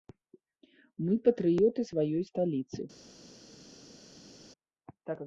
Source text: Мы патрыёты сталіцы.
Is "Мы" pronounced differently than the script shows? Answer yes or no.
no